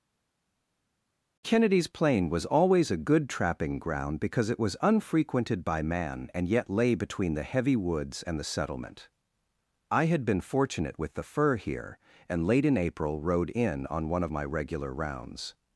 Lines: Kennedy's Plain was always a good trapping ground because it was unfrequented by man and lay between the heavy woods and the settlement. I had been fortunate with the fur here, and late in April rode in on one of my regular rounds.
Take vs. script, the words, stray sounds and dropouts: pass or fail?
fail